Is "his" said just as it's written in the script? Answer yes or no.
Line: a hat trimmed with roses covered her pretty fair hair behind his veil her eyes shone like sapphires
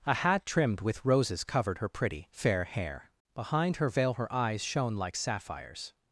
no